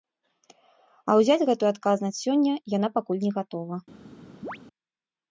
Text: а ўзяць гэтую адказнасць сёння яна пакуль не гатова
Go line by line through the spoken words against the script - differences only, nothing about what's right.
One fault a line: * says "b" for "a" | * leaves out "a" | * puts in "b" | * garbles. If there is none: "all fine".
all fine